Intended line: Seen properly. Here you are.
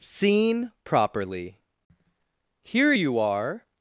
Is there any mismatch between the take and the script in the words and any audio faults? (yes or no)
no